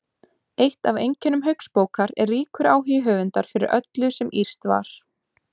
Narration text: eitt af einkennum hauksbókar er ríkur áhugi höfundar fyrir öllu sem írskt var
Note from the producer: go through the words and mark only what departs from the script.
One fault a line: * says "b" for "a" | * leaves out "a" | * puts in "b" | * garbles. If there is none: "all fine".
all fine